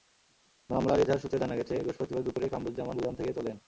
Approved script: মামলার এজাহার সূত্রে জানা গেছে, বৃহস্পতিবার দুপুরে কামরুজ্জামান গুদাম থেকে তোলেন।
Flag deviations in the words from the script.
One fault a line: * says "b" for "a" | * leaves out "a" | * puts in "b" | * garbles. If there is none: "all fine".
all fine